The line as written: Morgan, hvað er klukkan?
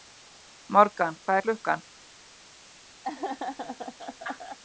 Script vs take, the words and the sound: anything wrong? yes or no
yes